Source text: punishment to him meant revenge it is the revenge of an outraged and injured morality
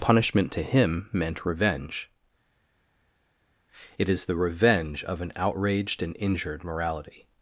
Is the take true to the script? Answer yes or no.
yes